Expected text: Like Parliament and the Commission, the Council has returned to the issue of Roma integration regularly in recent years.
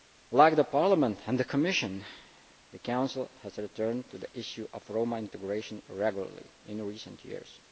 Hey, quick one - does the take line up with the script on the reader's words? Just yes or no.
yes